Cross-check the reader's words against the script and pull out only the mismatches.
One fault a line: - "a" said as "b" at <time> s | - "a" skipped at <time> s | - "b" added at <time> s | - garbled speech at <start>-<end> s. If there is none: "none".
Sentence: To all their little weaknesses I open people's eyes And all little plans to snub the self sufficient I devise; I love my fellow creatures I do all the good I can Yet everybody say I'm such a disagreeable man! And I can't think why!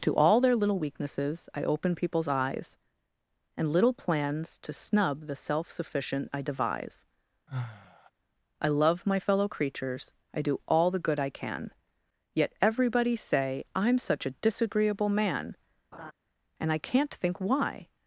- "all" skipped at 3.7 s